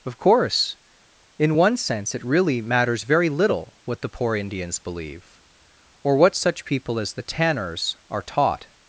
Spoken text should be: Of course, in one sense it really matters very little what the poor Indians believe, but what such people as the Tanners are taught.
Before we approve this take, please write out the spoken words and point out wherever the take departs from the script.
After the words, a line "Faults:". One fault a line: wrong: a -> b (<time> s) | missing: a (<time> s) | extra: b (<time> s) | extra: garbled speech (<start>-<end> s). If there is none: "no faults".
Of course, in one sense it really matters very little what the poor Indians believe, or what such people as the Tanners are taught.
Faults:
wrong: but -> or (6.0 s)